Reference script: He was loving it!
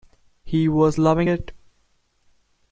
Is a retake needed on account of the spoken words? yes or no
no